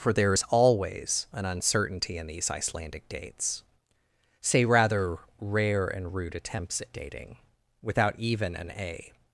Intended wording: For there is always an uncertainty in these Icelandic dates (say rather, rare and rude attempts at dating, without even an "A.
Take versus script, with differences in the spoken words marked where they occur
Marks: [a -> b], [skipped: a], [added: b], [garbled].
For there is always an uncertainty in these Icelandic dates (say rather, rare and rude attempts at dating, without even an "A.